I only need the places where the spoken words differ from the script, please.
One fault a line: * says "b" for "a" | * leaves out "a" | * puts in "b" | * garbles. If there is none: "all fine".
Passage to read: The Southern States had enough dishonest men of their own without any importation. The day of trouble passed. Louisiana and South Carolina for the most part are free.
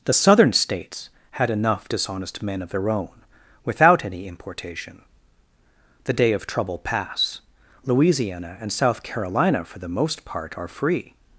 * says "pass" for "passed"